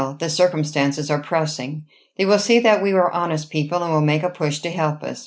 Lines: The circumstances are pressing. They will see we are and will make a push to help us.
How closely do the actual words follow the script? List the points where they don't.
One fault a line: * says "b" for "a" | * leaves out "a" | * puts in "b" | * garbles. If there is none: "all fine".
* puts in "that"
* puts in "honest people"